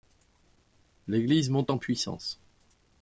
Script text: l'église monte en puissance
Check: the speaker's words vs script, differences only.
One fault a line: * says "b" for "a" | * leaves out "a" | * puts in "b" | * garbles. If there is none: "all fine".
all fine